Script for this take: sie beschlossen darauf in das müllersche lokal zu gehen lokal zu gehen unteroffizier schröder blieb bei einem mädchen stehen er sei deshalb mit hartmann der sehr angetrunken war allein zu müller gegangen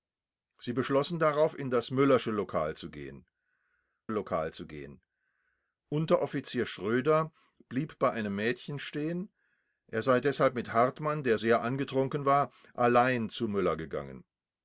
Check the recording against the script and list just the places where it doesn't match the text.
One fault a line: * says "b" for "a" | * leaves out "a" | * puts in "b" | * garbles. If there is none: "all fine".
all fine